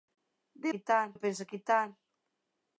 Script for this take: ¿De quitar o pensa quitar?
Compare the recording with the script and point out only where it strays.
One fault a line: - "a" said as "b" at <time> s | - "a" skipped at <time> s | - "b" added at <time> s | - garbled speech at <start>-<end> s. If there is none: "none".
none